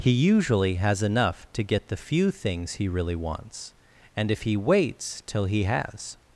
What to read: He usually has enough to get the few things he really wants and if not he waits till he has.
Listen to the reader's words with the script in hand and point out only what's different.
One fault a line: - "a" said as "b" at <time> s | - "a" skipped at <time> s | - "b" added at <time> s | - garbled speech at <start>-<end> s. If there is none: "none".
- "not" skipped at 4.4 s